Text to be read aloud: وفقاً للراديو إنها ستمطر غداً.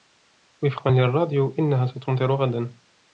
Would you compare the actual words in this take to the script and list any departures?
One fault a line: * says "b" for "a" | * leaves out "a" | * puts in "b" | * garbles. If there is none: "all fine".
all fine